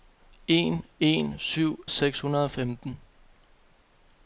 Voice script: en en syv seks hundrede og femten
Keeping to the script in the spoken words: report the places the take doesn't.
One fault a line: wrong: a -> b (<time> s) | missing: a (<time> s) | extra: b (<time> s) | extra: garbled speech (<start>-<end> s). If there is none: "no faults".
no faults